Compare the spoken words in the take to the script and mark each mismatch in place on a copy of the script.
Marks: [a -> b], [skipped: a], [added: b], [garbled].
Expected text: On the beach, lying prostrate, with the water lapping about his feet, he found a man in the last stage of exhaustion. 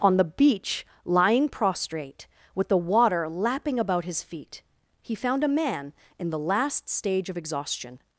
On the beach, lying prostrate, with the water lapping about his feet, he found a man in the last stage of exhaustion.